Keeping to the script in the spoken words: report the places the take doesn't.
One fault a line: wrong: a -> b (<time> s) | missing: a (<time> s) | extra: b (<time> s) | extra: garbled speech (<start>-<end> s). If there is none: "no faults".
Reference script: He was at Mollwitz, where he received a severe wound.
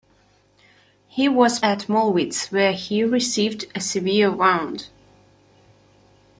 no faults